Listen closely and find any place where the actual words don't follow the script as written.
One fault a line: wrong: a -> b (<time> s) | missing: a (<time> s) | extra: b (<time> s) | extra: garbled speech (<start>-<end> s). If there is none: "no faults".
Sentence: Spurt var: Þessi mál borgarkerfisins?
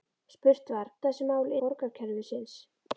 no faults